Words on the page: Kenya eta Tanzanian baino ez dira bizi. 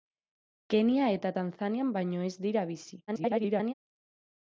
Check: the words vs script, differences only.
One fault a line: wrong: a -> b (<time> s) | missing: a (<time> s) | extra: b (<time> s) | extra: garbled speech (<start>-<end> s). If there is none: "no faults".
extra: garbled speech (3.1-3.7 s)